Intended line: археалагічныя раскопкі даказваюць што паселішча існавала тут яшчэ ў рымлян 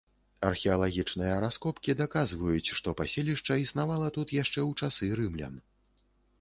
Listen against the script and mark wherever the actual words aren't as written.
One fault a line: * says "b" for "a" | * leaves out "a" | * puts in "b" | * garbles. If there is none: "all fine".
* puts in "часы"